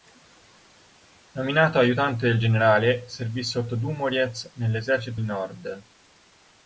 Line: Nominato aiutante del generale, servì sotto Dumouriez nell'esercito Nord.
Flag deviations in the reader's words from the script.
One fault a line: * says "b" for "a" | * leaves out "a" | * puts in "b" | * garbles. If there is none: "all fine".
all fine